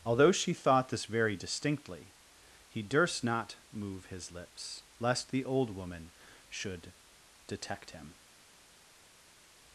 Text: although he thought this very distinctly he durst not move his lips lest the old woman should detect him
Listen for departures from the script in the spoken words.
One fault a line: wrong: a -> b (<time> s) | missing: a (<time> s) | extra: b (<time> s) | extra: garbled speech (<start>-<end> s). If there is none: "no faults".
wrong: he -> she (0.3 s)